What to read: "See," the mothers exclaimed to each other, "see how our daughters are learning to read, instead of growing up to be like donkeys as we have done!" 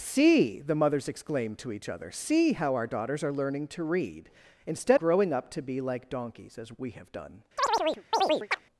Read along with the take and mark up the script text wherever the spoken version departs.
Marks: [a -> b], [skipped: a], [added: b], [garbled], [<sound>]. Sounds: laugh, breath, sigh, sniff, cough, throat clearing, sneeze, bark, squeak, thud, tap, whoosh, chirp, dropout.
"See," the mothers exclaimed to each other, "see how our daughters are learning to read, instead [skipped: of] growing up to be like donkeys as we have done!" [chirp]